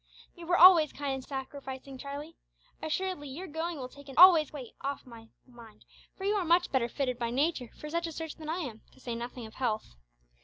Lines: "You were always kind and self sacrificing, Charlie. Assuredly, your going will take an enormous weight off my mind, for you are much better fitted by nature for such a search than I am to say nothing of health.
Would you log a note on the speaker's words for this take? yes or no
yes